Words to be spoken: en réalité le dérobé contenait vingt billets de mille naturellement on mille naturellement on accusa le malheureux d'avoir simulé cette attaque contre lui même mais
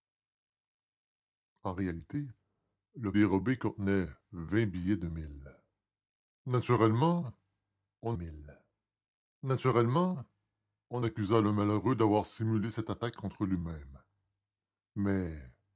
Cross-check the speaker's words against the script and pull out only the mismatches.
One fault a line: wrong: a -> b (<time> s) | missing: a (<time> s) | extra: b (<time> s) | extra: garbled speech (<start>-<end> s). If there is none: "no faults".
no faults